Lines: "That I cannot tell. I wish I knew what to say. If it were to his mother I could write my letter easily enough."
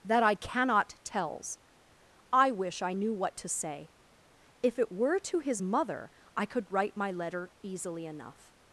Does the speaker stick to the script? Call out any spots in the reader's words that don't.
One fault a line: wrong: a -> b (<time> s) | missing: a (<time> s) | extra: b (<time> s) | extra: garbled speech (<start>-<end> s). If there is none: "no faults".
wrong: tell -> tells (1.0 s)